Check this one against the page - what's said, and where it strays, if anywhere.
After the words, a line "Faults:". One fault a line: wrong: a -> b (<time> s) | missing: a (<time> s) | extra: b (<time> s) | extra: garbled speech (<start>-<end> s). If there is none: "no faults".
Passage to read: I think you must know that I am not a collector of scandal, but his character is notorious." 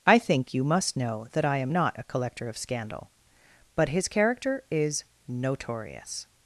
I think you must know that I am not a collector of scandal, but his character is notorious."
Faults:
no faults